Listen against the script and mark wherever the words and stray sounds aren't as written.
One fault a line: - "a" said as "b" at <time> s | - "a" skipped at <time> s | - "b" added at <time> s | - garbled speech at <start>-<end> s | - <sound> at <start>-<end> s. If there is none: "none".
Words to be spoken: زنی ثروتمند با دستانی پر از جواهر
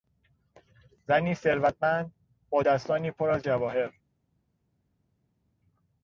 none